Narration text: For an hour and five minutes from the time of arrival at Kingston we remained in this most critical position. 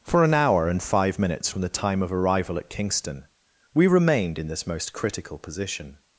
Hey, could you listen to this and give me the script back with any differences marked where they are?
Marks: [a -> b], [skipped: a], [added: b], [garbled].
For an hour and five minutes from the time of arrival at Kingston we remained in this most critical position.